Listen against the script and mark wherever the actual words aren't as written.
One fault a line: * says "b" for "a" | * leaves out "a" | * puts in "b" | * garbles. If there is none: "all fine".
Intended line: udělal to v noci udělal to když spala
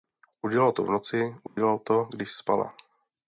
all fine